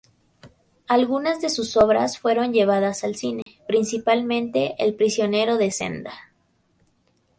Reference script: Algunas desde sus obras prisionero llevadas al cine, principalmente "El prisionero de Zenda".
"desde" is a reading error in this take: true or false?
true